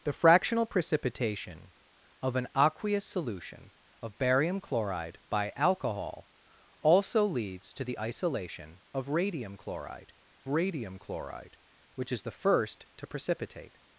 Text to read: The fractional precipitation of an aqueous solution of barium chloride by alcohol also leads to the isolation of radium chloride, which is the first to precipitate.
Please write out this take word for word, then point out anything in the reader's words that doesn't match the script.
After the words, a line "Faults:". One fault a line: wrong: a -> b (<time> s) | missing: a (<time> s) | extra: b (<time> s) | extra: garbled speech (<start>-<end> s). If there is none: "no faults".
The fractional precipitation of an aqueous solution of barium chloride by alcohol also leads to the isolation of radium chloride radium chloride, which is the first to precipitate.
Faults:
extra: radium chloride (10.5 s)